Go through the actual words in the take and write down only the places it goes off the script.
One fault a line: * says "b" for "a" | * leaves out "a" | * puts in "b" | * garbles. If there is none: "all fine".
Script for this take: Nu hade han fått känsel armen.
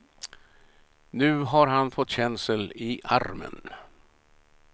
* says "har" for "hade"
* puts in "i"